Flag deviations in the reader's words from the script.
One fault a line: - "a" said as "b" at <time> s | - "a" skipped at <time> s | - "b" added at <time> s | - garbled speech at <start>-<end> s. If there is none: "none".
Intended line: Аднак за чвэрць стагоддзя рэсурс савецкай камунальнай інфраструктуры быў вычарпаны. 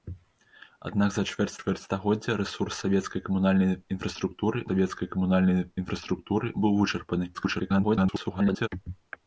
- "чвэрць" added at 1.6 s
- "савецкай камунальнай інфраструктуры" added at 4.7 s
- garbled speech at 7.3-8.7 s